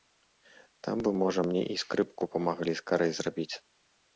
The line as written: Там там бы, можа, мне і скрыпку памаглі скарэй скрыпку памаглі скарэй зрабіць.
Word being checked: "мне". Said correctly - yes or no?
yes